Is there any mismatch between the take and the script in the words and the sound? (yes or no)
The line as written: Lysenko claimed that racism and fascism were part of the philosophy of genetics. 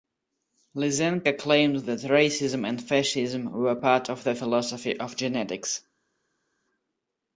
no